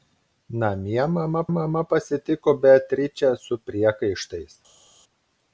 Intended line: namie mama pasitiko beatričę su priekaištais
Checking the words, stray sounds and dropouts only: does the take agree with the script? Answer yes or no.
no